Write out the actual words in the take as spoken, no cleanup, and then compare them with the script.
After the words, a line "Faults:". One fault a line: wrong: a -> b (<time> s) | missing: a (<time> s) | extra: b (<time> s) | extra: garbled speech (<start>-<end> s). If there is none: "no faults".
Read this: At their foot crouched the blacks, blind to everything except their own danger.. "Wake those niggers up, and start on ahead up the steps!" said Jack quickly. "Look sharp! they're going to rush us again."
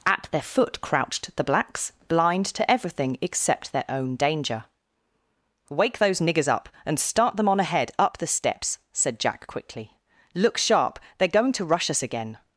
At their foot crouched the blacks, blind to everything except their own danger.. "Wake those niggers up, and start them on ahead up the steps!" said Jack quickly. "Look sharp! they're going to rush us again."
Faults:
extra: them (7.3 s)